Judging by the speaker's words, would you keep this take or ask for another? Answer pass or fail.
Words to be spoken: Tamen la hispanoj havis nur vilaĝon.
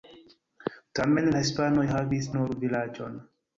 pass